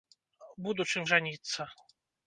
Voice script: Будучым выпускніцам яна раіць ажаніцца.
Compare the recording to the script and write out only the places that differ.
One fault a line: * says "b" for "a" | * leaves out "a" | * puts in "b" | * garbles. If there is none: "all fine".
* leaves out "выпускніцам яна раіць"